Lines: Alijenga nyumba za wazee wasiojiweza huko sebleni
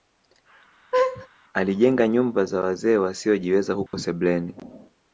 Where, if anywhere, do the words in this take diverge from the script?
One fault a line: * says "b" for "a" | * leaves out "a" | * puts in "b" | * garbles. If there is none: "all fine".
all fine